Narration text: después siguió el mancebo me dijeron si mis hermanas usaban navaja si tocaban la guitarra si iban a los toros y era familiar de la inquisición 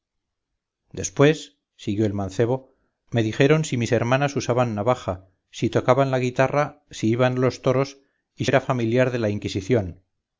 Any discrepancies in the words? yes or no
no